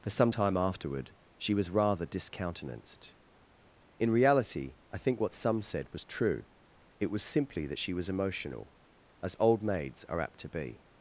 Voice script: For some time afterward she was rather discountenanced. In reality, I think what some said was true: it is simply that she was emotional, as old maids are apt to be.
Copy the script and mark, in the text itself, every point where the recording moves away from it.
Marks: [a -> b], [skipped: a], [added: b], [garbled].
For some time afterward she was rather discountenanced. In reality, I think what some said was true: it [is -> was] simply that she was emotional, as old maids are apt to be.